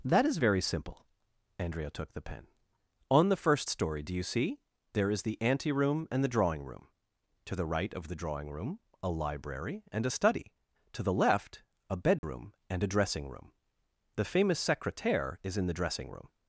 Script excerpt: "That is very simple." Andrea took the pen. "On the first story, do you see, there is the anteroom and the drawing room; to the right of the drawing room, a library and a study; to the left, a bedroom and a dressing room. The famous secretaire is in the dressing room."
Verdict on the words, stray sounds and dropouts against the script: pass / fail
fail